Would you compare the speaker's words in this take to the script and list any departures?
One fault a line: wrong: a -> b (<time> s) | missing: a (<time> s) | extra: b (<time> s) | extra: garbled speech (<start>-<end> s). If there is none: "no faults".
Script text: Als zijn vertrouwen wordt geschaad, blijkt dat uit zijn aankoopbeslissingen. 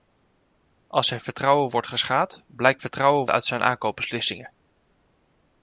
wrong: dat -> vertrouwen (2.8 s)